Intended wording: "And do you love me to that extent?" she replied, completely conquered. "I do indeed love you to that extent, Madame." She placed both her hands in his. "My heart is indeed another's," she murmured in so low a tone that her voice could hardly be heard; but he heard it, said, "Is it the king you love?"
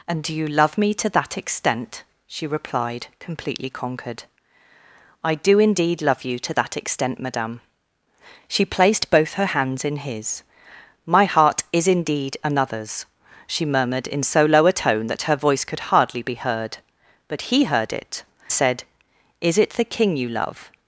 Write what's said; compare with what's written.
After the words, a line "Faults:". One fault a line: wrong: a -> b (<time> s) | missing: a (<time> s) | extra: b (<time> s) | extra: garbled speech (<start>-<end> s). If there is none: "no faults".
"And do you love me to that extent?" she replied, completely conquered. "I do indeed love you to that extent, Madame." She placed both her hands in his. "My heart is indeed another's," she murmured in so low a tone that her voice could hardly be heard; but he heard it, said, "Is it the king you love?"
Faults:
no faults